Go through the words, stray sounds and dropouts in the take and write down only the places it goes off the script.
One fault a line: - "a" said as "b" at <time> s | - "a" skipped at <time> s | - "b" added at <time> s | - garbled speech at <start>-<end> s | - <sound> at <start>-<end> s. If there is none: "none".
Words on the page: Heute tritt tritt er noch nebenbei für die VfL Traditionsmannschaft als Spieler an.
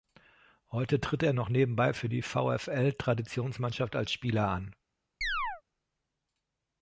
- "tritt" skipped at 1.2 s
- chirp at 5.2-5.6 s